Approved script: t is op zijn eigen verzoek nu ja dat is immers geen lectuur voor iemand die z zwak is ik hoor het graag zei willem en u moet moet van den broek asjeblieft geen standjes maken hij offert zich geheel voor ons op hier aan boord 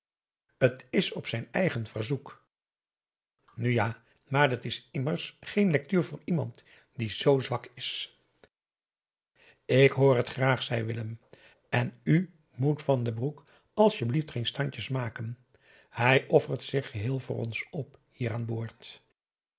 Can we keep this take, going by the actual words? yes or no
no